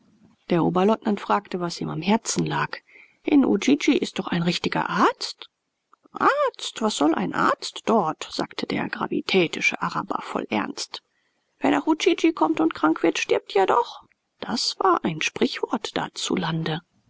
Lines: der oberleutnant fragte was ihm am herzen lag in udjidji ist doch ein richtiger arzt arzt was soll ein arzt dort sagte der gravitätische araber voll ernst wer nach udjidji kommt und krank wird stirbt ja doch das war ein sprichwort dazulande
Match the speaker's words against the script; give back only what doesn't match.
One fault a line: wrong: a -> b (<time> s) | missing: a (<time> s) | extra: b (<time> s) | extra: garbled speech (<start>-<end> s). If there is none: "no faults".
no faults